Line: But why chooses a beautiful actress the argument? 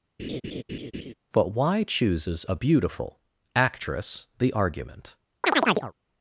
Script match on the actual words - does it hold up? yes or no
yes